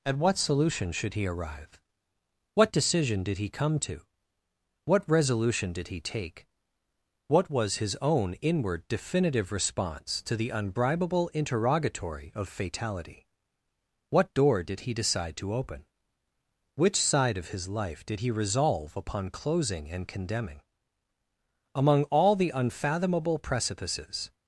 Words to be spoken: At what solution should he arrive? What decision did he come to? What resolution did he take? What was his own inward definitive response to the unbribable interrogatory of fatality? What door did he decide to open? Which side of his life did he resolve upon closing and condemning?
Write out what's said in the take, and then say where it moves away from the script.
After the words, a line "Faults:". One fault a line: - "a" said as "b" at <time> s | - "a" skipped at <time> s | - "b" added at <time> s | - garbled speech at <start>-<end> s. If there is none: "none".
At what solution should he arrive? What decision did he come to? What resolution did he take? What was his own inward definitive response to the unbribable interrogatory of fatality? What door did he decide to open? Which side of his life did he resolve upon closing and condemning? Among all the unfathomable precipices
Faults:
- "Among all the unfathomable precipices" added at 21.7 s